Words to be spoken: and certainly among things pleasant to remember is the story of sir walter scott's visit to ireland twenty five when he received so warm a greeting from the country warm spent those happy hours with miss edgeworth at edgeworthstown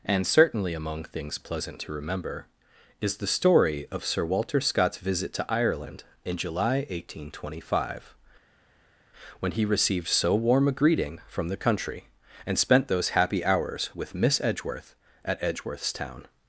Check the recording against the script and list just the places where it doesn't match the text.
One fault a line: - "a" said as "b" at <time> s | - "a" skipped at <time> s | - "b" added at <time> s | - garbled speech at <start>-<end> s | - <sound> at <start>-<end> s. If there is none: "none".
- "in july eighteen" added at 6.2 s
- "warm" said as "and" at 12.4 s